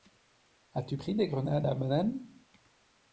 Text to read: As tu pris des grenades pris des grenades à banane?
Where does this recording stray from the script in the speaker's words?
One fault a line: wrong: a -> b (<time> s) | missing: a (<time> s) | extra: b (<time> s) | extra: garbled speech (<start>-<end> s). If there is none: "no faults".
missing: pris des grenades (1.7 s)